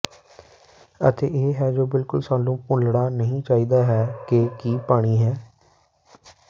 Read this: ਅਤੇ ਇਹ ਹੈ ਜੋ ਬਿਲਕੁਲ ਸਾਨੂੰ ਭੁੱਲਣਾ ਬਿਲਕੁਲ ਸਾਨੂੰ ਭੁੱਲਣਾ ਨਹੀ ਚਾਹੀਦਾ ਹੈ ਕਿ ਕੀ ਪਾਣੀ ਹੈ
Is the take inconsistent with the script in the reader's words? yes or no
yes